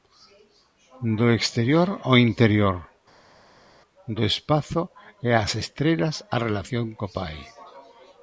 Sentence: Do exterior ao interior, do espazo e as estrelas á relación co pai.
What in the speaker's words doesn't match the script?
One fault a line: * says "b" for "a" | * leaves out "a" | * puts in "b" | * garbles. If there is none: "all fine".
all fine